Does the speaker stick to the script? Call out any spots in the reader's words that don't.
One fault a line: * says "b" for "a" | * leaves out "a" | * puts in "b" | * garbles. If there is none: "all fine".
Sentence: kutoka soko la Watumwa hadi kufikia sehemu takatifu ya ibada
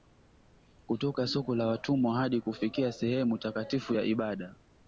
all fine